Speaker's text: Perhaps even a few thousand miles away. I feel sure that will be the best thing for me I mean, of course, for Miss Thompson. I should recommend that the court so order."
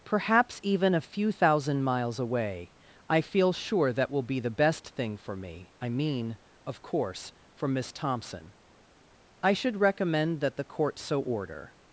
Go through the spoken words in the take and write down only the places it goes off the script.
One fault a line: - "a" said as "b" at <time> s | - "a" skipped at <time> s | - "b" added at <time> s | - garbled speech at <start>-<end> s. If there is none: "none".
none